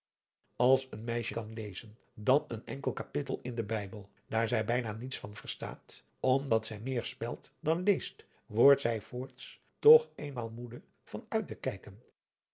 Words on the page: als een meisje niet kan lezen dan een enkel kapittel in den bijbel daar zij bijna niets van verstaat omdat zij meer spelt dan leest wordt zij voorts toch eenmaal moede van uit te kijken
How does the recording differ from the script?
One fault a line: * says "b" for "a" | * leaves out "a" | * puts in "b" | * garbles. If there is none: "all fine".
* leaves out "niet"